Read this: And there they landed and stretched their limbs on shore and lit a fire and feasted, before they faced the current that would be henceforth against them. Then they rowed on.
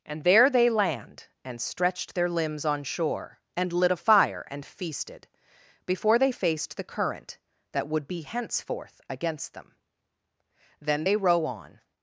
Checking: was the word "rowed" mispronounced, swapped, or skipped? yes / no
yes